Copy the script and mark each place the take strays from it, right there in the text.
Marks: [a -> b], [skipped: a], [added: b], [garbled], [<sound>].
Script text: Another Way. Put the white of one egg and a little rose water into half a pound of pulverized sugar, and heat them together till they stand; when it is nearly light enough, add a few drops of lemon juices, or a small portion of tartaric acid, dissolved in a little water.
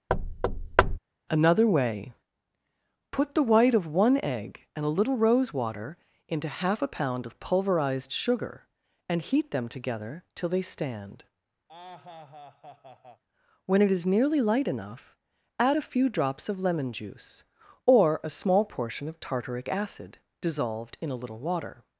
[thud] Another Way. Put the white of one egg and a little rose water into half a pound of pulverized sugar, and heat them together till they stand; [laugh] when it is nearly light enough, add a few drops of lemon [juices, -> juice] or a small portion of tartaric acid, dissolved in a little water.